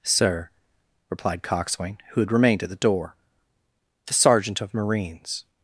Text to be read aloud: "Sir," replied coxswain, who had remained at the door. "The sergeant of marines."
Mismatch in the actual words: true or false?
false